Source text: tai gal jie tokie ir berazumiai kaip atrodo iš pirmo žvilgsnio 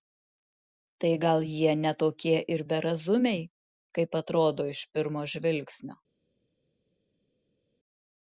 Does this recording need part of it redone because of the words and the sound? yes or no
yes